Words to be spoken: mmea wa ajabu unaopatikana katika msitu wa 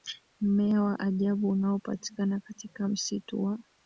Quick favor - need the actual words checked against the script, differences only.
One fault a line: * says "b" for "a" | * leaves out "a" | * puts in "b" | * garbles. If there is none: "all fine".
all fine